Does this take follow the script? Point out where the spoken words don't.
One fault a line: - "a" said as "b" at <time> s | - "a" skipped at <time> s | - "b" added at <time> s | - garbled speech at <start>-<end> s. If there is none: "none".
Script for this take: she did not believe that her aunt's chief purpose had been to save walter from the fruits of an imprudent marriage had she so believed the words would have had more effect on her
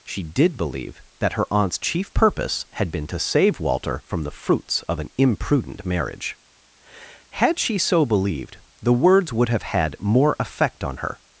- "not" skipped at 0.6 s